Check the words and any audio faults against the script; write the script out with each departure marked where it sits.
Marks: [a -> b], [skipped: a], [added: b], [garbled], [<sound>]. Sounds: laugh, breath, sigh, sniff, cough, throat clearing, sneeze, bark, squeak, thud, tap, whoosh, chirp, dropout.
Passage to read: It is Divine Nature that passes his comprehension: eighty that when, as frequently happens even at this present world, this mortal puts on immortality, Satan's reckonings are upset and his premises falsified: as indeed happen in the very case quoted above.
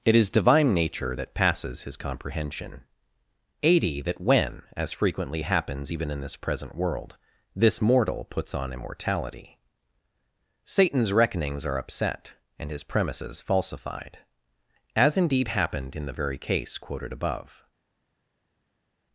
It is Divine Nature that passes his comprehension: eighty that when, as frequently happens even [at -> in] this present world, this mortal puts on immortality, Satan's reckonings are upset and his premises falsified: as indeed [happen -> happened] in the very case quoted above.